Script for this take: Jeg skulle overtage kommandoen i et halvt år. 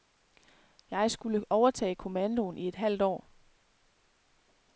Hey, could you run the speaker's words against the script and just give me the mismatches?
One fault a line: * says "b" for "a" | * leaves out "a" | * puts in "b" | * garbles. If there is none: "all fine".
all fine